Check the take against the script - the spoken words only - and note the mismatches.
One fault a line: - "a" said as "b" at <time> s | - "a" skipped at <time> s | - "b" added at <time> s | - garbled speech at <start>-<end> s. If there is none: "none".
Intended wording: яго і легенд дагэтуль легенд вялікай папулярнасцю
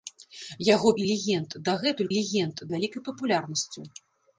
none